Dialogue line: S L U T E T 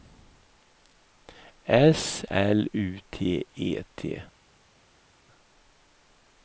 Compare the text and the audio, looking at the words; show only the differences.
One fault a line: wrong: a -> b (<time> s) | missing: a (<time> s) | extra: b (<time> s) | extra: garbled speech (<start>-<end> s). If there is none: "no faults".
no faults